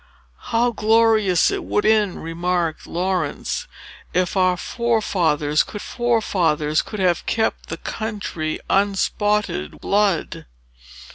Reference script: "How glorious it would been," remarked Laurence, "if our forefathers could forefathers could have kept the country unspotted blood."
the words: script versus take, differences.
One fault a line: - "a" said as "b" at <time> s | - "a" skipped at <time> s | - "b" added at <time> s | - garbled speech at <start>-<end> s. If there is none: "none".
none